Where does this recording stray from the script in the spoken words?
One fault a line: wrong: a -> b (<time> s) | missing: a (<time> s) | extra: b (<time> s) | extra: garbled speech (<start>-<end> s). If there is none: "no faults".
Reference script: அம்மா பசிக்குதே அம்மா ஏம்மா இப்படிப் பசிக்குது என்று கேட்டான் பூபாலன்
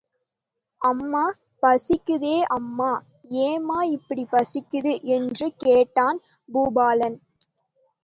no faults